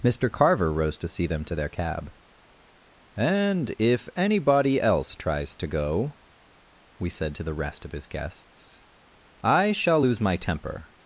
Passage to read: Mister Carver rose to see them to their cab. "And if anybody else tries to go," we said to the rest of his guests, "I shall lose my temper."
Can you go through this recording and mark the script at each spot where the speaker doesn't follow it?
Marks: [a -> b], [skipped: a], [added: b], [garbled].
Mister Carver rose to see them to their cab. "And if anybody else tries to go," we said to the rest of his guests, "I shall lose my temper."